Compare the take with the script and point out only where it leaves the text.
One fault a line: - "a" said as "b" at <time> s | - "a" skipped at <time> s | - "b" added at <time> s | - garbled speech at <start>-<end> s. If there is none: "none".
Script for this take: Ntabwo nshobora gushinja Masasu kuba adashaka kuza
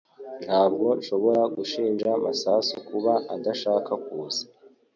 none